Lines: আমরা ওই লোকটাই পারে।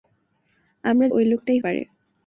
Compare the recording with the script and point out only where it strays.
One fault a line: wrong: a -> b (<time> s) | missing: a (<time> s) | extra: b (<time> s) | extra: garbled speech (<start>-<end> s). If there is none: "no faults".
no faults